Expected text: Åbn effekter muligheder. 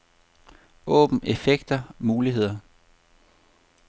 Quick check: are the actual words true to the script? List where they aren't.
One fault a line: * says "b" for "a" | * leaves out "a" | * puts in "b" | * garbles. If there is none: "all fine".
all fine